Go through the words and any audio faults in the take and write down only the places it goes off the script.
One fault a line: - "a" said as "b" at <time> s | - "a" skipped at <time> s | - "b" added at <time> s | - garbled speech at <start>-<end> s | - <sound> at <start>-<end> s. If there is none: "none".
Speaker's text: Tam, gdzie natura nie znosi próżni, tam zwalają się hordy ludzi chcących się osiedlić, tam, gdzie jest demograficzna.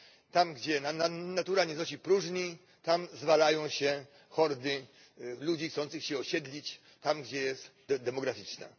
none